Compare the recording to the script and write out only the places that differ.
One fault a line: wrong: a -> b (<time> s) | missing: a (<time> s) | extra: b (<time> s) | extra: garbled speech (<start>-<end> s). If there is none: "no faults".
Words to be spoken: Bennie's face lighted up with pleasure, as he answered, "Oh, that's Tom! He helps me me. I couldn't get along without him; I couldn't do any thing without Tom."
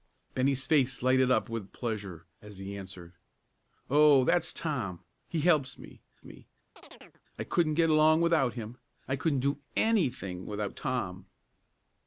no faults